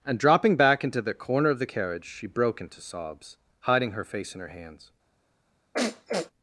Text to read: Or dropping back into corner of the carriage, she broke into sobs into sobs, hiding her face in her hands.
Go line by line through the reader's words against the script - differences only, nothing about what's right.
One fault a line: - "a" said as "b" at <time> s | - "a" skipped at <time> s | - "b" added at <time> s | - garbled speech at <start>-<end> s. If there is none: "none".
- "Or" said as "And" at 0.0 s
- "the" added at 1.0 s
- "into sobs" skipped at 3.4 s